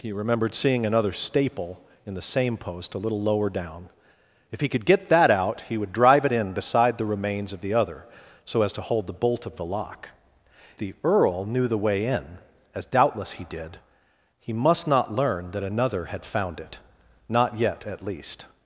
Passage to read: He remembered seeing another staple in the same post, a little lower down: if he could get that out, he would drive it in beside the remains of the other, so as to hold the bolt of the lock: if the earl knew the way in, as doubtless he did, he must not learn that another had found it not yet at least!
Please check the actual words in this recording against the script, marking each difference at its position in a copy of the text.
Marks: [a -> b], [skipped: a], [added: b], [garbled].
He remembered seeing another staple in the same post, a little lower down: if he could get that out, he would drive it in beside the remains of the other, so as to hold the bolt of the lock: [skipped: if] the earl knew the way in, as doubtless he did, he must not learn that another had found it not yet at least!